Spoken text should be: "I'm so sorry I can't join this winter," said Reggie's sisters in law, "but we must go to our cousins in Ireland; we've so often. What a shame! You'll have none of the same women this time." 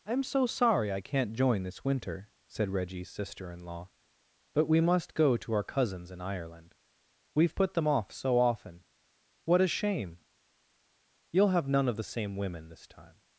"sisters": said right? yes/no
no